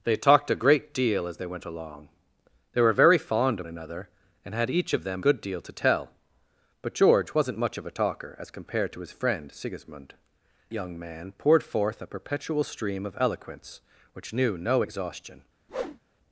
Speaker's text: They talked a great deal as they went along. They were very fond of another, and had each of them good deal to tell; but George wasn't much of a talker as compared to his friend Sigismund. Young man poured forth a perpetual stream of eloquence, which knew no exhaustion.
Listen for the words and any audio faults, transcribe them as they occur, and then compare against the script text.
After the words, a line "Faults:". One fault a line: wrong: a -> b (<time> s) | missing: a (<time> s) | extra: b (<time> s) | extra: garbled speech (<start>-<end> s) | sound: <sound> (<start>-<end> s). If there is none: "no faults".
They talked a great deal as they went along. They were very fond of another, and had each of them good deal to tell; but George wasn't much of a talker as compared to his friend Sigismund. Young man poured forth a perpetual stream of eloquence, which knew no exhaustion.
Faults:
sound: whoosh (15.7-16.0 s)